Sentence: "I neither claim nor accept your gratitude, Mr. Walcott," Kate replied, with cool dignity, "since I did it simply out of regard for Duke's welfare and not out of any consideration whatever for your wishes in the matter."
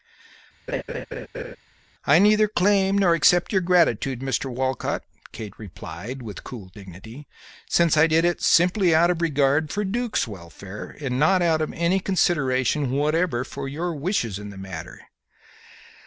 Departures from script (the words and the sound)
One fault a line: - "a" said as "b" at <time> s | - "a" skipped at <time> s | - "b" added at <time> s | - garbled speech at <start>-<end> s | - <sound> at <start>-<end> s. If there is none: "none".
- laugh at 0.7-1.6 s